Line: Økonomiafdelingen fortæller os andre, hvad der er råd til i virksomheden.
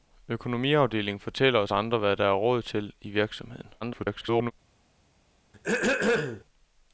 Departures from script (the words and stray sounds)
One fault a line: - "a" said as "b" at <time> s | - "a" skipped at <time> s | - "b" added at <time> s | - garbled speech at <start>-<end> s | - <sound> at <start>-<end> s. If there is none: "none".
- garbled speech at 3.8-4.5 s
- throat clearing at 5.5-6.4 s